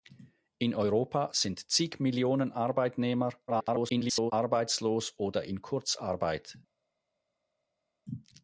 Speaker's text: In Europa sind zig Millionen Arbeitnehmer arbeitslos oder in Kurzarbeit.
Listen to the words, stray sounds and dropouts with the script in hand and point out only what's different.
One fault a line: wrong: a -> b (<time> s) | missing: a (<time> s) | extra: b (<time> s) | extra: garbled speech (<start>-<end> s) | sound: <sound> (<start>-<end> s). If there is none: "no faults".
extra: garbled speech (3.5-4.3 s)